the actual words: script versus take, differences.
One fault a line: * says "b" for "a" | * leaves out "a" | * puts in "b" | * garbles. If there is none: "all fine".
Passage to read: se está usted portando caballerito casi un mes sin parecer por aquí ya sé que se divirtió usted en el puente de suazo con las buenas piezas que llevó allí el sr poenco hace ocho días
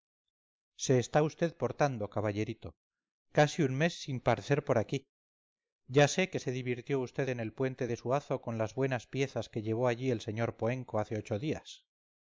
all fine